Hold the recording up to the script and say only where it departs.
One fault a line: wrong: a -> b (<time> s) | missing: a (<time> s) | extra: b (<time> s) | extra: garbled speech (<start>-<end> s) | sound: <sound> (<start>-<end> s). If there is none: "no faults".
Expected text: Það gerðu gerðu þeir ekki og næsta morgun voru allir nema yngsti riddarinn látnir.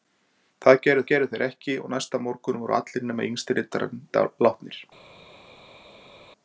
no faults